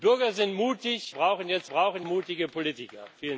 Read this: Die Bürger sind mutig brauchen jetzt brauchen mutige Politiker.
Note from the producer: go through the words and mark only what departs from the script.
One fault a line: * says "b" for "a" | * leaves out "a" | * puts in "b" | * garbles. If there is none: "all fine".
all fine